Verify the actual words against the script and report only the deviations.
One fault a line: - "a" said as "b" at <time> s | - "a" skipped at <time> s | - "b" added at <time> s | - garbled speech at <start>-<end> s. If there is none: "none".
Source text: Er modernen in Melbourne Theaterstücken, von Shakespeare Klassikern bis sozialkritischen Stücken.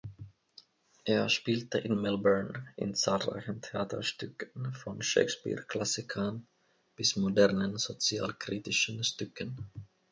- "modernen" said as "spielte" at 1.3 s
- "in zahlreichen" added at 2.8 s
- "modernen" added at 7.2 s